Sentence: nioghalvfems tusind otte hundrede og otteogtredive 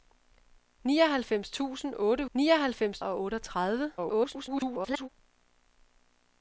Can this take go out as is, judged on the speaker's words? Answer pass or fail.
fail